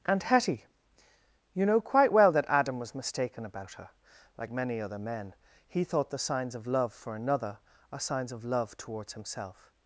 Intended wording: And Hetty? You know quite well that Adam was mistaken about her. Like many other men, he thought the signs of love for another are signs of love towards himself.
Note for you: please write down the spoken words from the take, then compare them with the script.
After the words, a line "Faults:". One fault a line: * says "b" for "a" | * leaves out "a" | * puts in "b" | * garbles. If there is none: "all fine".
And Hetty? You know quite well that Adam was mistaken about her. Like many other men, he thought the signs of love for another are signs of love towards himself.
Faults:
all fine